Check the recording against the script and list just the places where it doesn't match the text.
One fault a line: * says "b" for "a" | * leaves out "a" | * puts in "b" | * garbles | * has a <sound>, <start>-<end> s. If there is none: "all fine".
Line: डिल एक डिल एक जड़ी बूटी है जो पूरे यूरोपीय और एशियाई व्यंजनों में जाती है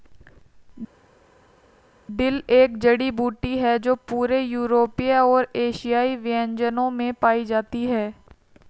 * leaves out "डिल एक"
* puts in "पाई"